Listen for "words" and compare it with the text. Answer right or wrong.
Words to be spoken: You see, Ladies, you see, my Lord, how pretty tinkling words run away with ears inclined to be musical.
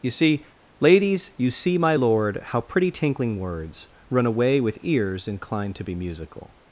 right